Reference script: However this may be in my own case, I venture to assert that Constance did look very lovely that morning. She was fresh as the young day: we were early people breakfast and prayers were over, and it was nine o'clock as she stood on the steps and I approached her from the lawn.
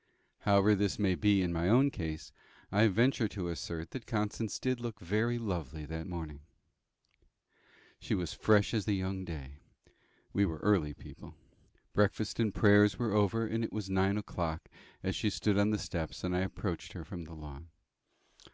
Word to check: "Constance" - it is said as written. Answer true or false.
true